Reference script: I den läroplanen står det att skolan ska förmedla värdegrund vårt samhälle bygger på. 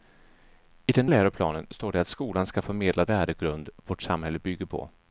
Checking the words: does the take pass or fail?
pass